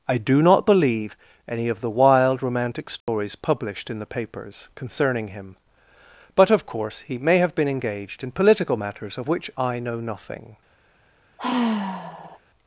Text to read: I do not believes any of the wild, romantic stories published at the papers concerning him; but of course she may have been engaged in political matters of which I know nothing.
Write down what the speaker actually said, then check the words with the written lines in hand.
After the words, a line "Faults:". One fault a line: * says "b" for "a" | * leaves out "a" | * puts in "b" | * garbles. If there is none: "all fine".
I do not believe any of the wild, romantic stories published in the papers concerning him; but of course he may have been engaged in political matters of which I know nothing.
Faults:
* says "believe" for "believes"
* says "in" for "at"
* says "he" for "she"